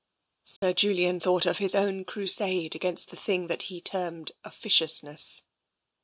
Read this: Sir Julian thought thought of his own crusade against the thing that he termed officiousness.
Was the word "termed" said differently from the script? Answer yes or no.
no